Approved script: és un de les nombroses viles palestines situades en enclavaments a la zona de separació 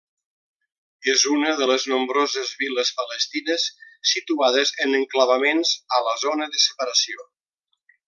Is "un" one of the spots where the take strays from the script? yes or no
yes